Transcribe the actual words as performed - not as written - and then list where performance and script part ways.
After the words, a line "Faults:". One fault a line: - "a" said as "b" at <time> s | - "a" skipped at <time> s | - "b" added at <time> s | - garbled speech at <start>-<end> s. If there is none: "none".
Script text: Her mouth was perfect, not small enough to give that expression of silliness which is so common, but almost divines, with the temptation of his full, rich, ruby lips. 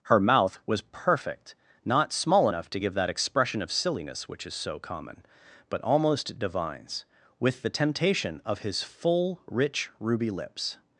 Her mouth was perfect, not small enough to give that expression of silliness which is so common, but almost divines, with the temptation of his full, rich, ruby lips.
Faults:
none